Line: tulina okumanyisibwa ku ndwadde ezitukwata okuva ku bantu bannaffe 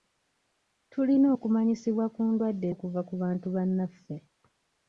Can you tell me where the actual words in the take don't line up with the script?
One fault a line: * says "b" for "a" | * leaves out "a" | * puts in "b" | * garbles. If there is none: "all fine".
* leaves out "ezitukwata"